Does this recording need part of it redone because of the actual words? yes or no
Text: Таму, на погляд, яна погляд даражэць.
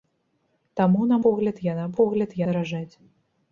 no